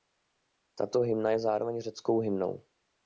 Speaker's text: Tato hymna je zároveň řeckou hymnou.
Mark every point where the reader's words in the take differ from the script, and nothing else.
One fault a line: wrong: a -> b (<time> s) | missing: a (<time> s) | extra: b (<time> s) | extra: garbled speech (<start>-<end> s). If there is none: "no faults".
no faults